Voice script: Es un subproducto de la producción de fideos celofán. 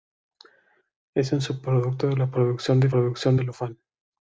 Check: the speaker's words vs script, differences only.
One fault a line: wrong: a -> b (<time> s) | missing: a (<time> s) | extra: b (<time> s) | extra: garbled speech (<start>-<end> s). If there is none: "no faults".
wrong: fideos -> producción (2.9 s)